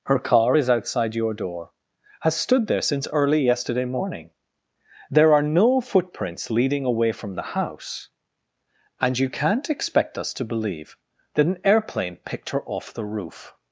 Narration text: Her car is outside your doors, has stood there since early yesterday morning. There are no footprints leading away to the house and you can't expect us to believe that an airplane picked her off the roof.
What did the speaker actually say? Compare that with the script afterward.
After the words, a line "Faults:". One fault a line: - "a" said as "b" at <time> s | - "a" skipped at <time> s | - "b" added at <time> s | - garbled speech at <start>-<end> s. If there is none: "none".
Her car is outside your door, has stood there since early yesterday morning. There are no footprints leading away from the house and you can't expect us to believe that an airplane picked her off the roof.
Faults:
- "doors" said as "door" at 1.3 s
- "to" said as "from" at 7.1 s